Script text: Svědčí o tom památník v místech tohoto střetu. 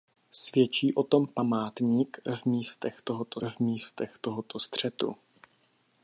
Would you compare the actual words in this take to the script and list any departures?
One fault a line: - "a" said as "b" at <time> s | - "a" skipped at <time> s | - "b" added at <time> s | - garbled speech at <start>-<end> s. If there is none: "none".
- "v místech tohoto" added at 3.5 s